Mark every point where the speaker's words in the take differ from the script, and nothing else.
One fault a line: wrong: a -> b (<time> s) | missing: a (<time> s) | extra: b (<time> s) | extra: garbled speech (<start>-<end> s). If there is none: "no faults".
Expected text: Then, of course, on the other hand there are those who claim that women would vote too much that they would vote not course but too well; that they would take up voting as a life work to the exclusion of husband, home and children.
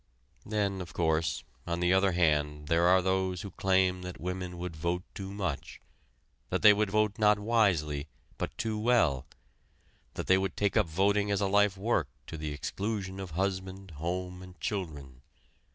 wrong: course -> wisely (7.4 s)